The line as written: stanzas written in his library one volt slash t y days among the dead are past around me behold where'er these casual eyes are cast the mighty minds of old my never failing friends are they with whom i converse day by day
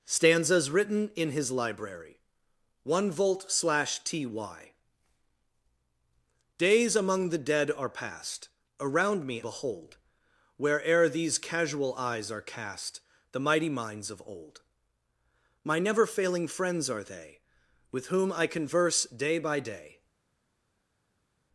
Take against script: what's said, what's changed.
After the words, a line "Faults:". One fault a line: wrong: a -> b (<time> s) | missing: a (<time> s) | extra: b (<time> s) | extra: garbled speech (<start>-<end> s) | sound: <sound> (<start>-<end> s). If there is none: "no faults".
stanzas written in his library one volt slash t y days among the dead are past around me behold where'er these casual eyes are cast the mighty minds of old my never failing friends are they with whom i converse day by day
Faults:
no faults